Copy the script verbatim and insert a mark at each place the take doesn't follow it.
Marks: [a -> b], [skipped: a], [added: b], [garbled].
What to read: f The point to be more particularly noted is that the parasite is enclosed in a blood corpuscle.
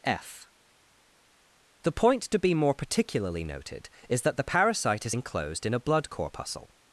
f The point to be more particularly noted is that the parasite is enclosed in a blood corpuscle.